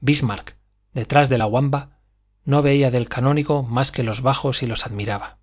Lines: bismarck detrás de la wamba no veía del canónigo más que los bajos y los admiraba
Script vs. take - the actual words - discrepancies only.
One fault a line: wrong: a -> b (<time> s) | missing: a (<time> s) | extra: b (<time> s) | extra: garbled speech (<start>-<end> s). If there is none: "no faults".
no faults